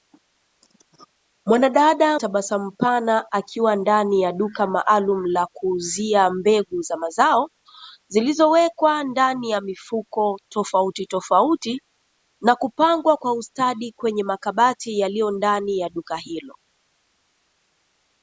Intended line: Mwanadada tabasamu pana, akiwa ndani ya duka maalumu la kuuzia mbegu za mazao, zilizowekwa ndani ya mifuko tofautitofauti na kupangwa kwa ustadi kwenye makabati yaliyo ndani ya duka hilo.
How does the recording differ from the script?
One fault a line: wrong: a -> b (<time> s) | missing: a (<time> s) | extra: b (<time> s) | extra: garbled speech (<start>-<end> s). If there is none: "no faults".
no faults